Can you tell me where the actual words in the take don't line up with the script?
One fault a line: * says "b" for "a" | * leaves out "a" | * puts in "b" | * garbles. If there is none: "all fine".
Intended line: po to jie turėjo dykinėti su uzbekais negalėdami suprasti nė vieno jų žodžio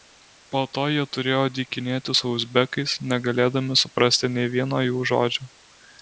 all fine